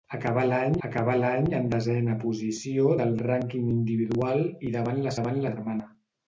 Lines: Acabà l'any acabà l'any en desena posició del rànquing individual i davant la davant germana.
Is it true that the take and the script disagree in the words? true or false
false